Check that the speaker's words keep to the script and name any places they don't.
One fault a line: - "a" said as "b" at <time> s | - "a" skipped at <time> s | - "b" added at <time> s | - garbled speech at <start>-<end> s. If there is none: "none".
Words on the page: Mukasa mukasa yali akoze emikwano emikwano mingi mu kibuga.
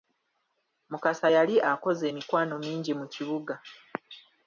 - "mukasa" skipped at 1.3 s
- "emikwano" skipped at 2.5 s